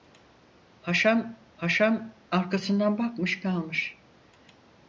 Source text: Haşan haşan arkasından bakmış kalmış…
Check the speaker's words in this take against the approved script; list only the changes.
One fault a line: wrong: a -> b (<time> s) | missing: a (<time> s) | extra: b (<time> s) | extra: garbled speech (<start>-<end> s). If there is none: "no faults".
no faults